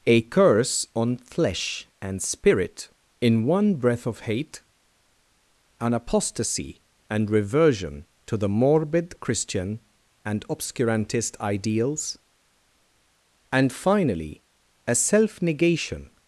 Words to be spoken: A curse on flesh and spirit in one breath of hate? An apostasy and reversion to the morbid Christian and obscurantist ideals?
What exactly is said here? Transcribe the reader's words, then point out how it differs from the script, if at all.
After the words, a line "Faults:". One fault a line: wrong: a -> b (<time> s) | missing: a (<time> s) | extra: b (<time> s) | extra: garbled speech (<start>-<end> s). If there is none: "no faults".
A curse on flesh and spirit in one breath of hate? An apostasy and reversion to the morbid Christian and obscurantist ideals? And finally a self negation
Faults:
extra: And finally a self negation (13.5 s)